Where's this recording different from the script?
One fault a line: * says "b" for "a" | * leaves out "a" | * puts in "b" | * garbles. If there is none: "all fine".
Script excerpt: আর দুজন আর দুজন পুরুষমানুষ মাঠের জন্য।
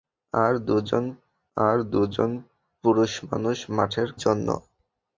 all fine